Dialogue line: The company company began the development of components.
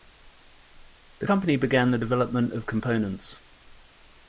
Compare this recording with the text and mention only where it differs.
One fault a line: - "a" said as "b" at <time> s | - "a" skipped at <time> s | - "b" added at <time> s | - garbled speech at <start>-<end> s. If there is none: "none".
- "company" skipped at 1.6 s